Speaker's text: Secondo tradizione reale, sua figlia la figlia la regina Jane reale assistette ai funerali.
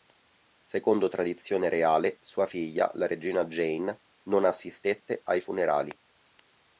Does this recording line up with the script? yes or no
no